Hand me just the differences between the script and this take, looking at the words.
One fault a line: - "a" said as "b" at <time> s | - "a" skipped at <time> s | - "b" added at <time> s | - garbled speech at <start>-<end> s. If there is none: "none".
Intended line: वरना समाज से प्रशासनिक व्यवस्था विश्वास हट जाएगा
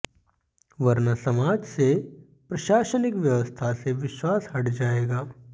- "से" added at 3.8 s